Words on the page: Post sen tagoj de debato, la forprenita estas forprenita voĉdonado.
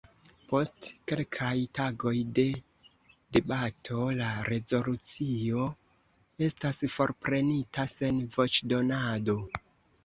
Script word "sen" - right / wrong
wrong